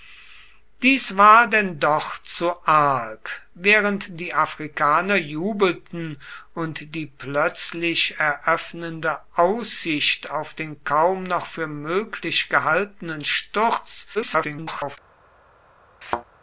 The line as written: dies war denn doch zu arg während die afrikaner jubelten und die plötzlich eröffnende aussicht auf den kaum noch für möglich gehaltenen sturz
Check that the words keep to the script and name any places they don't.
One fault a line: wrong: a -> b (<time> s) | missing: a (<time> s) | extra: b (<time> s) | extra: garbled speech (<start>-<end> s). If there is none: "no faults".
extra: garbled speech (14.1-15.0 s)